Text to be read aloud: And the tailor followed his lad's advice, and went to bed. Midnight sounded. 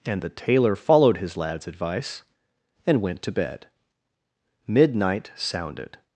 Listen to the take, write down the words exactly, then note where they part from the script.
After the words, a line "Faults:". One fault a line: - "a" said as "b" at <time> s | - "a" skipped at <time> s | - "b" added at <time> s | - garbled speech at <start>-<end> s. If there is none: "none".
And the tailor followed his lad's advice, and went to bed. Midnight sounded.
Faults:
none